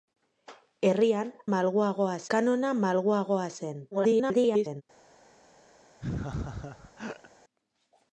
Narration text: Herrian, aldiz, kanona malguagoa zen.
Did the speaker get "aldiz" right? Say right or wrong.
wrong